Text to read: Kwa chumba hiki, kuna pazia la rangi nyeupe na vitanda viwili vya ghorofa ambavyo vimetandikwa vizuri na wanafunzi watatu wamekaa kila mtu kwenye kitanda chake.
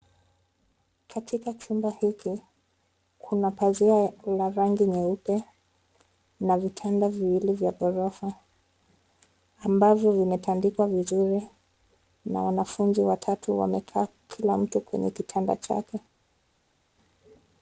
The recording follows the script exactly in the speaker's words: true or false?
false